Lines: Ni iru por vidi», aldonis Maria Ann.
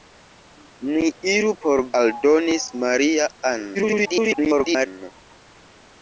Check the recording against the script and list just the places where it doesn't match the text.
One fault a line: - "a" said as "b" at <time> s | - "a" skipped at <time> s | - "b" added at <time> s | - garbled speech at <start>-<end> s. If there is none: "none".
- "vidi" skipped at 1.8 s
- garbled speech at 3.7-4.9 s